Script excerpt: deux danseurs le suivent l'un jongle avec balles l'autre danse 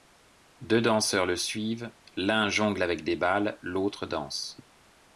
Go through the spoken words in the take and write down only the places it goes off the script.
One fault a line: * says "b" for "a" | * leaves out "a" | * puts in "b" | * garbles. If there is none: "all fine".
* puts in "des"